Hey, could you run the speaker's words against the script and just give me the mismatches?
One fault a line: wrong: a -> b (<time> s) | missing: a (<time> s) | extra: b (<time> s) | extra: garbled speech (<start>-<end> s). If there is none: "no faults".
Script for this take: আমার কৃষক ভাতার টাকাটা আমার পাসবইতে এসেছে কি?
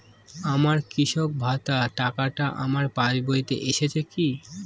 no faults